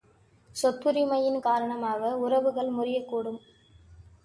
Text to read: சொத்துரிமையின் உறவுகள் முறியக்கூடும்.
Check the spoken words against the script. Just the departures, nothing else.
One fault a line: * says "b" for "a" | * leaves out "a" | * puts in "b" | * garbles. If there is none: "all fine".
* puts in "காரணமாக"